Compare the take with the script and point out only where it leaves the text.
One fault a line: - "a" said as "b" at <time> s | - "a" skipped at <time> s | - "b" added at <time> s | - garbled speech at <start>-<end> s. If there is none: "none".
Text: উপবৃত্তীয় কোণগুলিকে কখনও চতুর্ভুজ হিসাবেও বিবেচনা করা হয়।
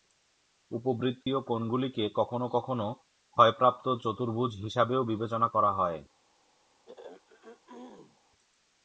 - "কখনও ক্ষয়প্রাপ্ত" added at 2.5 s